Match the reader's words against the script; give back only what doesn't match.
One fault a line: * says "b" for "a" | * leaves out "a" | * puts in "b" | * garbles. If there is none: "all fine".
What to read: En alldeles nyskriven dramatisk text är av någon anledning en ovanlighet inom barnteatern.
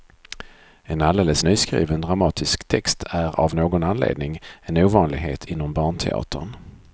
all fine